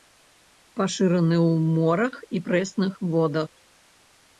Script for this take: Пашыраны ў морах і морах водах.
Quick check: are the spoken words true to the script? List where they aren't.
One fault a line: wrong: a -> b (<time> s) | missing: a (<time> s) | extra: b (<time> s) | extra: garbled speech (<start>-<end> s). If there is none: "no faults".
wrong: морах -> прэсных (2.5 s)